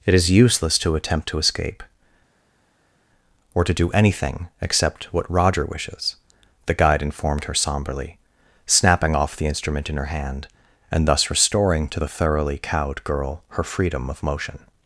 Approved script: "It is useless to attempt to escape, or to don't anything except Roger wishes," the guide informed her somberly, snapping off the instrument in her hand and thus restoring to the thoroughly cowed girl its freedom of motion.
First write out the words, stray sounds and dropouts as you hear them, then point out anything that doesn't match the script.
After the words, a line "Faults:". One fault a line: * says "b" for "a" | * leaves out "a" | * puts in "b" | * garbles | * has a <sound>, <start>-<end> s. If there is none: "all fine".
"It is useless to attempt to escape, or to do anything except what Roger wishes," the guide informed her somberly, snapping off the instrument in her hand and thus restoring to the thoroughly cowed girl her freedom of motion.
Faults:
* says "do" for "don't"
* puts in "what"
* says "her" for "its"